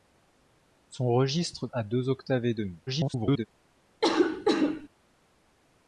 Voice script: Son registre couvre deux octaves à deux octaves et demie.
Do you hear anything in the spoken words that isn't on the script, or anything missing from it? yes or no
yes